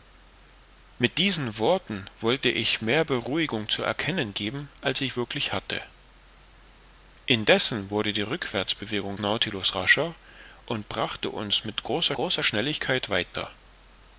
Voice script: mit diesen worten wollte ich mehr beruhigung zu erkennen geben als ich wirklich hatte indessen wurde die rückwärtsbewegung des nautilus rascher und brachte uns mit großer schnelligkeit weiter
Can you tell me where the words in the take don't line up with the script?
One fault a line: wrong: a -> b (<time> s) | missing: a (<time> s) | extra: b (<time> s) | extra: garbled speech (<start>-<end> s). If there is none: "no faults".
missing: des (9.2 s)
extra: großer (12.1 s)